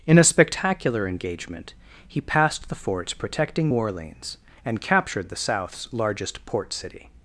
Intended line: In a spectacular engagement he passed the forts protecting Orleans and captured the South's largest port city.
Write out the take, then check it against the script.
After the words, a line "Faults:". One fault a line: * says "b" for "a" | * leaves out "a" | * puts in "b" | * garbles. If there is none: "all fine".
In a spectacular engagement he passed the forts protecting Orleans and captured the South's largest port city.
Faults:
all fine